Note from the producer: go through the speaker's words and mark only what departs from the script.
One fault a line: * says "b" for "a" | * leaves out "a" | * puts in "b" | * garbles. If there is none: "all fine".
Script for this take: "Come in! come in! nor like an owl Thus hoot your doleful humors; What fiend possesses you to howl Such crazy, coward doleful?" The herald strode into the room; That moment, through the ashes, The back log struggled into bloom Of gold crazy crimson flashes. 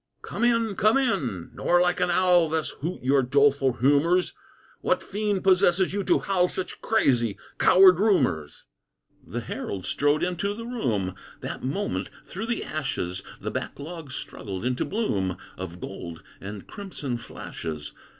* says "rumors" for "doleful"
* says "and" for "crazy"